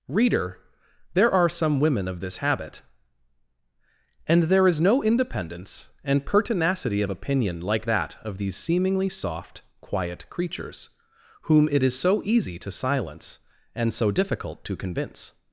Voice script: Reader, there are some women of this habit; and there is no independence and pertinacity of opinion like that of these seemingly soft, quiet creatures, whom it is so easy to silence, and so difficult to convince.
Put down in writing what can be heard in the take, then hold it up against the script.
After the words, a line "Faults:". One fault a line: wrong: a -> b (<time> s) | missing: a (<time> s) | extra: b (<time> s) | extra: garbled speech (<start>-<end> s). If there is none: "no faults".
Reader, there are some women of this habit; and there is no independence and pertinacity of opinion like that of these seemingly soft, quiet creatures, whom it is so easy to silence, and so difficult to convince.
Faults:
no faults